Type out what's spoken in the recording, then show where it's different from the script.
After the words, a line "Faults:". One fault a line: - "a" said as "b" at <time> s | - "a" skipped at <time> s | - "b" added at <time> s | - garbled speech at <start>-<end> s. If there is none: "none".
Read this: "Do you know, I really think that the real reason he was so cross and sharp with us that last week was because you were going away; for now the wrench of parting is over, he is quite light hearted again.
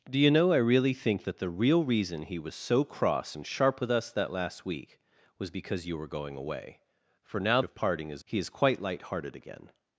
"Do you know, I really think that the real reason he was so cross and sharp with us that last week was because you were going away; for now of parting is he is quite light hearted again.
Faults:
- "the wrench" skipped at 7.6 s
- "over" skipped at 8.2 s